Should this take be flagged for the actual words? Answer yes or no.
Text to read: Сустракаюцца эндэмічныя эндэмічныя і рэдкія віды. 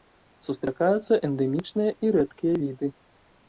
yes